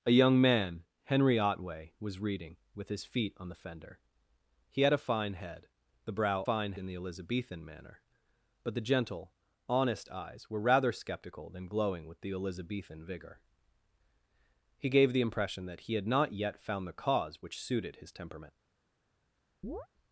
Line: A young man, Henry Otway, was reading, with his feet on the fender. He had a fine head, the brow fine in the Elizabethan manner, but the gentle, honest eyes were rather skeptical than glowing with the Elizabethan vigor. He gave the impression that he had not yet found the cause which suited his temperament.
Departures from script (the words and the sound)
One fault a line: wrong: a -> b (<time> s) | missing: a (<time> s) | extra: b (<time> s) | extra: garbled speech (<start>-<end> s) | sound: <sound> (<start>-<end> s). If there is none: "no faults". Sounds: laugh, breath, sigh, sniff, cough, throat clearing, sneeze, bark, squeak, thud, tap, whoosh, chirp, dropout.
sound: chirp (19.6-19.9 s)